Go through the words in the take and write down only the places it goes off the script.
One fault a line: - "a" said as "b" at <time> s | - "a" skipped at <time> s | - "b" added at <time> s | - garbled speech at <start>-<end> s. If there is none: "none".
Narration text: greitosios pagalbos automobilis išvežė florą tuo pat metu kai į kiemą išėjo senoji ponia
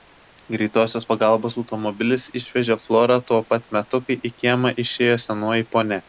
none